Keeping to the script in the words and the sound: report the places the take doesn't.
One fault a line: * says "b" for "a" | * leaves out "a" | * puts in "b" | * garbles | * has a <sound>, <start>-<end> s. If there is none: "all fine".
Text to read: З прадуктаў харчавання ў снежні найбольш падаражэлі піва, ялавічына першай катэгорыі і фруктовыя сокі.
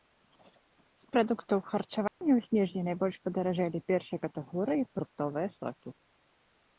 * has a dropout, 2.1-2.2 s
* leaves out "піва ялавічына"